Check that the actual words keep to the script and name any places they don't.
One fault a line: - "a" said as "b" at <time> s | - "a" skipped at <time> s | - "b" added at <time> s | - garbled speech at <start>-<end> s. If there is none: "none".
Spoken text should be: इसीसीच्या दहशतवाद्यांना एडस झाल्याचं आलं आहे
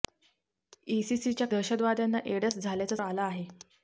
none